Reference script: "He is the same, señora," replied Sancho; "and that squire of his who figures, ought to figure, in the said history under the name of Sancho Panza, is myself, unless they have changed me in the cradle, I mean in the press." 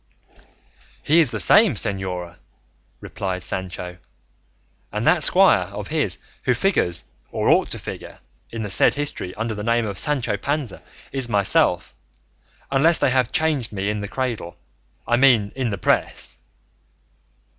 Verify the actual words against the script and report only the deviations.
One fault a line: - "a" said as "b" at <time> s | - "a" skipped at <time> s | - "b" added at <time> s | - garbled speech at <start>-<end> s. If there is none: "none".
- "or" added at 7.3 s